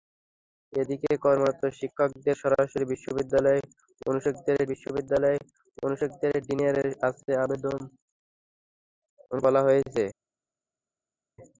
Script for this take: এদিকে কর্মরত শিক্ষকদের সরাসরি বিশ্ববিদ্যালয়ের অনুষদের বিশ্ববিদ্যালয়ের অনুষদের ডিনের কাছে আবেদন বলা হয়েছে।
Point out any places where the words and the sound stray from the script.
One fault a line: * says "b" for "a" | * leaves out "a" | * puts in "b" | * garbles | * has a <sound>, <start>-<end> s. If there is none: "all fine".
all fine